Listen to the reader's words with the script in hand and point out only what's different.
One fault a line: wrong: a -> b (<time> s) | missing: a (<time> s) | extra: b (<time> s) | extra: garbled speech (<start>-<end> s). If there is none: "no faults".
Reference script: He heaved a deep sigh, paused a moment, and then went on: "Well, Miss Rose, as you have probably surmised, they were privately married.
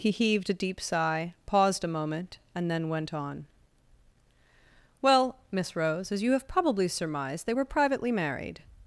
no faults